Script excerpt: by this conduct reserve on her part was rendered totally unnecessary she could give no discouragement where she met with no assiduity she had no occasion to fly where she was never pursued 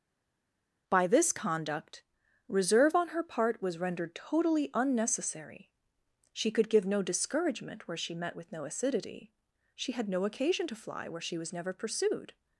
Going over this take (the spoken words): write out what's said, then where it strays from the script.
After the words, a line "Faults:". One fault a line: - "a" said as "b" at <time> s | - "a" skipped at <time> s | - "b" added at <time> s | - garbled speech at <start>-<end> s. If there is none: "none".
by this conduct reserve on her part was rendered totally unnecessary she could give no discouragement where she met with no assiduity she had no occasion to fly where she was never pursued
Faults:
none